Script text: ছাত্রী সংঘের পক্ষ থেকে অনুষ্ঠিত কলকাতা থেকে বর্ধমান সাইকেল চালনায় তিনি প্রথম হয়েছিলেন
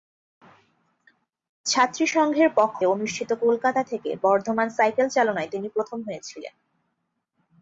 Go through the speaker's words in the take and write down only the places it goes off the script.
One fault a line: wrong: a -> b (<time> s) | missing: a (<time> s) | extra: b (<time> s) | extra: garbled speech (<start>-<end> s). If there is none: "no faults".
missing: থেকে (2.8 s)